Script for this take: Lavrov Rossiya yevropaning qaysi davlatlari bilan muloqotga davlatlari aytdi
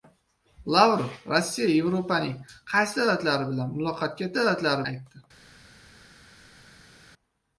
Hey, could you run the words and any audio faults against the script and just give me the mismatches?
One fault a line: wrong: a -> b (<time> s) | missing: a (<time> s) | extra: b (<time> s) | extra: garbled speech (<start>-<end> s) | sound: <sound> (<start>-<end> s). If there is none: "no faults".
no faults